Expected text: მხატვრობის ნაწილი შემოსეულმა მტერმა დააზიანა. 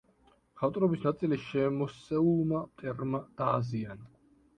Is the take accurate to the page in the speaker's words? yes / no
yes